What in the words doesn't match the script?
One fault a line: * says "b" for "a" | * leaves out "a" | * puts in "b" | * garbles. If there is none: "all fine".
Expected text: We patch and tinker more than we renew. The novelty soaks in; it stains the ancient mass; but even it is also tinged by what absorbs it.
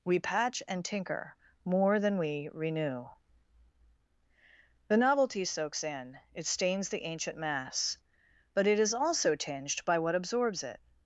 * leaves out "even"